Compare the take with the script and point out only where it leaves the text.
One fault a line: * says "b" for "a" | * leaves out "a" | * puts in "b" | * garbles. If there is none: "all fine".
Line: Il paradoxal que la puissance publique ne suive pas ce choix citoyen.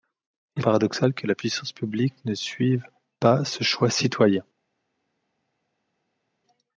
all fine